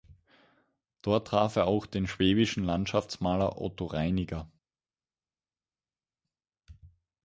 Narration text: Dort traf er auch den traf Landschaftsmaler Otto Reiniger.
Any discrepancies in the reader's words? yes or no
yes